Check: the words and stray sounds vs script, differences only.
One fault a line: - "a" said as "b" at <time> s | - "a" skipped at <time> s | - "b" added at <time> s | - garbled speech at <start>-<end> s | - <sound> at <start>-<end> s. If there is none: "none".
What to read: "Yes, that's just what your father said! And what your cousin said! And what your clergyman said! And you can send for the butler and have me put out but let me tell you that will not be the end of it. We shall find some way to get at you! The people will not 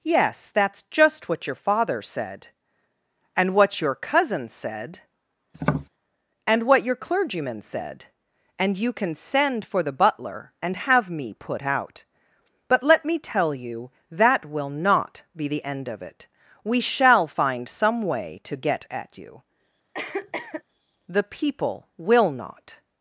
- tap at 5.5-5.9 s
- cough at 19.9-20.6 s